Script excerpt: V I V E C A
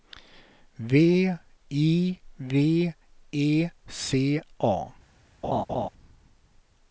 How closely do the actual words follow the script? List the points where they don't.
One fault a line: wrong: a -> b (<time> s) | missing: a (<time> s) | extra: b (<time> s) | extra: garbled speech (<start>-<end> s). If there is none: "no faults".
no faults